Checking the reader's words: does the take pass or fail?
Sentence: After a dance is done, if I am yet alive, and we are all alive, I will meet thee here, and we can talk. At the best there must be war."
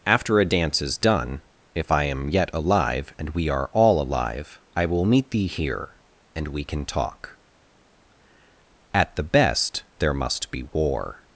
pass